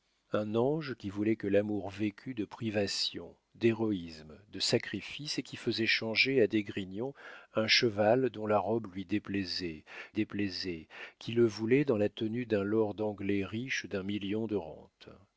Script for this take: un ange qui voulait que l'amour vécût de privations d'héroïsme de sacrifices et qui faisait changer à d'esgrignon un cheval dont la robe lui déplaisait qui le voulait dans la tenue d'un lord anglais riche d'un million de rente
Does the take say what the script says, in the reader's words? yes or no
no